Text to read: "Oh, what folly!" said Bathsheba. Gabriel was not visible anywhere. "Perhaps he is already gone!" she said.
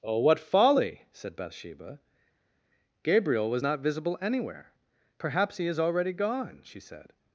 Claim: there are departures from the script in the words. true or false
false